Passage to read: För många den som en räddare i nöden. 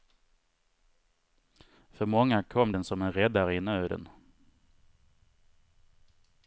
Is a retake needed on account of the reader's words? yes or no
yes